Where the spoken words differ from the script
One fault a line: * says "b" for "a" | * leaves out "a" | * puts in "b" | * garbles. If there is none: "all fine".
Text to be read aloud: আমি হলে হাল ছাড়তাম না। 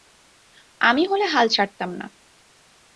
all fine